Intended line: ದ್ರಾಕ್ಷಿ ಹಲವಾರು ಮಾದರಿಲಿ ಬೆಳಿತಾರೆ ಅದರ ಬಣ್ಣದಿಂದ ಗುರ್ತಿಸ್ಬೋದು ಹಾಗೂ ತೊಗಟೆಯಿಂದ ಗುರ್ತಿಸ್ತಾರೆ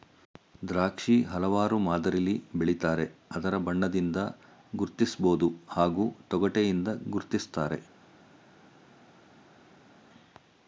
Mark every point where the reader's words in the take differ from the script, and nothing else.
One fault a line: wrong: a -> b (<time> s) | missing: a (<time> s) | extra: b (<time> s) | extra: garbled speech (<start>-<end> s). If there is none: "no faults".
no faults